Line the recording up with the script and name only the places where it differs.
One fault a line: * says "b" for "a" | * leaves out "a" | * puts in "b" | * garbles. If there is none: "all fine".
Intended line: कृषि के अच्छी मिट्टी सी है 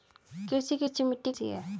all fine